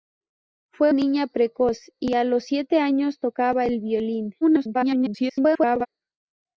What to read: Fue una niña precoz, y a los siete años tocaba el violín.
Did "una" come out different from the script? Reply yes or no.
yes